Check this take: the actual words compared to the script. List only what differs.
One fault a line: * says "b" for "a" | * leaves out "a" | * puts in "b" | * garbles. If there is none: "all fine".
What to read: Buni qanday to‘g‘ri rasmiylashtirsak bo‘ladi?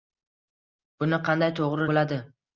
* leaves out "rasmiylashtirsak"